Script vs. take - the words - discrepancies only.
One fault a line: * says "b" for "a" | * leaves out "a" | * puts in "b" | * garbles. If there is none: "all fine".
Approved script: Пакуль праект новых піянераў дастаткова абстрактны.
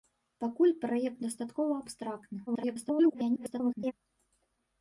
* leaves out "новых піянераў"
* garbles